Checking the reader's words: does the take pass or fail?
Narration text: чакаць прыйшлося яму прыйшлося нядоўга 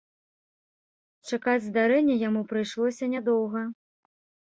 fail